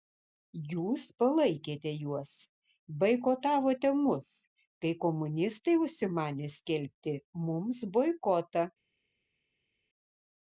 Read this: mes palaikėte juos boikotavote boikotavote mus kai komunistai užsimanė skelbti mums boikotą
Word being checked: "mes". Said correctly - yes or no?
no